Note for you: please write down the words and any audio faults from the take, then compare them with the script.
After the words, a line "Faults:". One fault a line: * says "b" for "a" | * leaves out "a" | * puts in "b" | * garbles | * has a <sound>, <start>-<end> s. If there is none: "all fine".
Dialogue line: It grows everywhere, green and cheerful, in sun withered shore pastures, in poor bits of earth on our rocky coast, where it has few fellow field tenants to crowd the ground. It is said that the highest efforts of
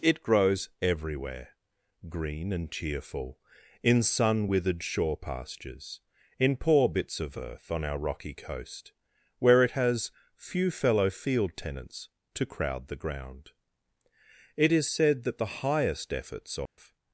It grows everywhere, green and cheerful, in sun withered shore pastures, in poor bits of earth on our rocky coast, where it has few fellow field tenants to crowd the ground. It is said that the highest efforts of
Faults:
* has a dropout, 16.7-16.8 s